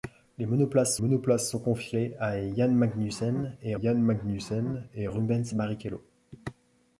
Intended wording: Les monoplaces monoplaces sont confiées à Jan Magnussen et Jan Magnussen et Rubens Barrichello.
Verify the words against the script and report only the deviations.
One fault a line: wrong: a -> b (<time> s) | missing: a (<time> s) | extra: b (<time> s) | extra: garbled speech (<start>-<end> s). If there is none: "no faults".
no faults